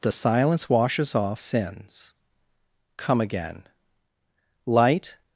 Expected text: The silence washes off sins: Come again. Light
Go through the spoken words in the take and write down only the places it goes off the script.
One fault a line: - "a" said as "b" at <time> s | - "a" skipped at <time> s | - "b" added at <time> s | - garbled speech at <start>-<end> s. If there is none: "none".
none